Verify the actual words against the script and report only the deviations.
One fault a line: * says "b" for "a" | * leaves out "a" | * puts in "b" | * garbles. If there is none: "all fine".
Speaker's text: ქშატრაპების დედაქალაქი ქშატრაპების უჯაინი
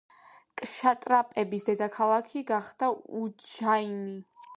* says "გახდა" for "ქშატრაპების"